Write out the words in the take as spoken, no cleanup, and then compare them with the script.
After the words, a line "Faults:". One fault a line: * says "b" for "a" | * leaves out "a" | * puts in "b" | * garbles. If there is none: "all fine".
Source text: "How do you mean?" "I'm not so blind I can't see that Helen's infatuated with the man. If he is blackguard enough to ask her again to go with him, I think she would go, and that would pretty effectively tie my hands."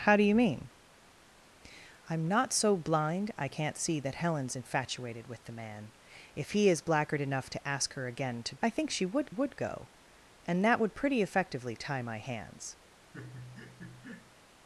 "How do you mean?" "I'm not so blind I can't see that Helen's infatuated with the man. If he is blackguard enough to ask her again to I think she would would go, and that would pretty effectively tie my hands."
Faults:
* leaves out "go with him"
* puts in "would"